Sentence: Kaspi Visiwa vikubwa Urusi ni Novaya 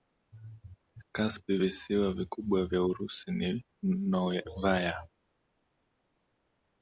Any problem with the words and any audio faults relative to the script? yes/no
yes